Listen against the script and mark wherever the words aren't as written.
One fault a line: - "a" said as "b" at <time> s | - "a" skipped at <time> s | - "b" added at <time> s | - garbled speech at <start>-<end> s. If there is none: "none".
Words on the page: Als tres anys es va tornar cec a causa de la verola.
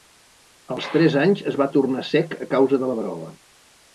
none